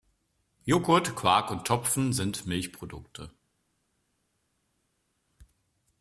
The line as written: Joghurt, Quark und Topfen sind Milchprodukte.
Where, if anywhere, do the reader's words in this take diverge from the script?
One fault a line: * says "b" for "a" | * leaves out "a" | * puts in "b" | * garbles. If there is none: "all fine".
all fine